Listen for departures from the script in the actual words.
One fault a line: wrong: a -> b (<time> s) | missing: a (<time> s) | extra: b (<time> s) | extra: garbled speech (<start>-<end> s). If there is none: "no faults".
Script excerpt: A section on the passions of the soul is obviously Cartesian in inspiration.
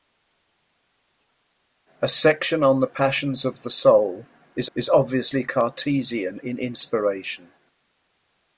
extra: is (4.7 s)